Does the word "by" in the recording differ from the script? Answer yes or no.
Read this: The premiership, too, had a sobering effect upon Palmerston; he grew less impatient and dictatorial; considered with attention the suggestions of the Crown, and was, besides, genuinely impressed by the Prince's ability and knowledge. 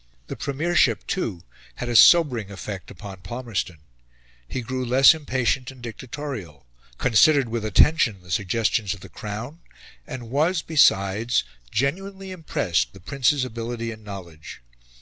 yes